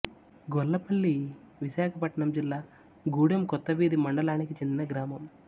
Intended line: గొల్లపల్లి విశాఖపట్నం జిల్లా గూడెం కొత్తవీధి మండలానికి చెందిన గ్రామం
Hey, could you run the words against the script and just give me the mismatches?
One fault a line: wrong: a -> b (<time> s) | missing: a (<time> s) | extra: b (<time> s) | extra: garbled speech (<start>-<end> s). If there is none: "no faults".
no faults